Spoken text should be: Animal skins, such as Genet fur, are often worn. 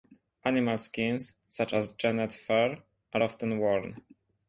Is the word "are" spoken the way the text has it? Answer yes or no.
yes